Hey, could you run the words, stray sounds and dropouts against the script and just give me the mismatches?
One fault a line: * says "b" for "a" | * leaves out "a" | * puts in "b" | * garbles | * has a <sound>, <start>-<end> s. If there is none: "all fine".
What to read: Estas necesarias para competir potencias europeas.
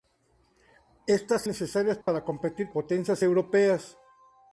* has a dropout, 2.0-2.1 s